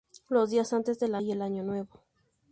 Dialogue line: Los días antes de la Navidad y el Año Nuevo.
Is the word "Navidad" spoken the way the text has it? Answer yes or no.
no